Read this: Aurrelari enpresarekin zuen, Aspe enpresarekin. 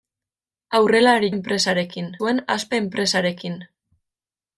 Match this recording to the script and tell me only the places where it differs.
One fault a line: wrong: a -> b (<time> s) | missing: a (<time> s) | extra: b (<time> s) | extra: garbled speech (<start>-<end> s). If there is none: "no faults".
no faults